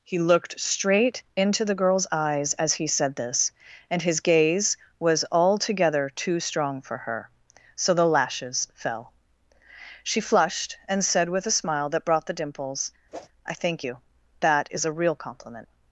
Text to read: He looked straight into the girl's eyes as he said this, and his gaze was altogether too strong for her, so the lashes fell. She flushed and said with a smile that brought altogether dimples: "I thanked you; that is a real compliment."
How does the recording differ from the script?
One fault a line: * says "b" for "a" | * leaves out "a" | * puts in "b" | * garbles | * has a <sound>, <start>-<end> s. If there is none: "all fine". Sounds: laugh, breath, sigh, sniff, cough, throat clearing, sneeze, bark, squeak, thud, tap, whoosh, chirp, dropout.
* says "the" for "altogether"
* has a whoosh, 13.1-13.3 s
* says "thank" for "thanked"